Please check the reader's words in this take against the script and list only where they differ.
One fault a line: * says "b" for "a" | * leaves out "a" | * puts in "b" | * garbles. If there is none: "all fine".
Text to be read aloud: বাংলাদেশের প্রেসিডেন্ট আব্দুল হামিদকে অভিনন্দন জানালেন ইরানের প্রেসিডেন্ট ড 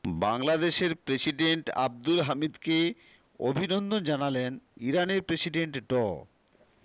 all fine